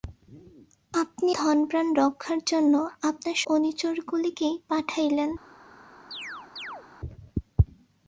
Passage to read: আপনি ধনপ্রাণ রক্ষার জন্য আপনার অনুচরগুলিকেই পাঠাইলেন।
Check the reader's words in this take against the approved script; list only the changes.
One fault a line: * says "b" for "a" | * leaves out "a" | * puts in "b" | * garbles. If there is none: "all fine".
all fine